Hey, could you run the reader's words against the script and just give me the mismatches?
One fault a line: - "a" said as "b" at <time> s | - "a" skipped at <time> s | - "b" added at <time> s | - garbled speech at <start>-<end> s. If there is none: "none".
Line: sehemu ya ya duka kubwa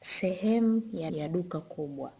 none